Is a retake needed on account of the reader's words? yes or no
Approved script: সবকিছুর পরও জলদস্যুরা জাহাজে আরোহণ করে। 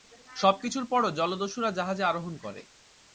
no